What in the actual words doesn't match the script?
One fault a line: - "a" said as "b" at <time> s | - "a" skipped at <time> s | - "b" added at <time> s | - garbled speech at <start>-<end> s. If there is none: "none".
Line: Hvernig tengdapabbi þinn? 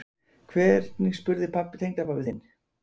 - "spurði" added at 1.2 s